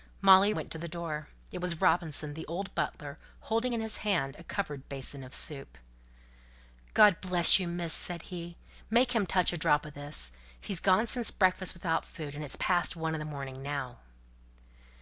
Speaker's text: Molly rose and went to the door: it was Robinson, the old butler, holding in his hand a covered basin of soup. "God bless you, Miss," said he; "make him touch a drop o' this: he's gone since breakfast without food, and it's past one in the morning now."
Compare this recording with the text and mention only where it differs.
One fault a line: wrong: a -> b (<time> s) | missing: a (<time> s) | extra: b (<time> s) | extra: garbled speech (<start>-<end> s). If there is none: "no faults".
missing: rose and (0.5 s)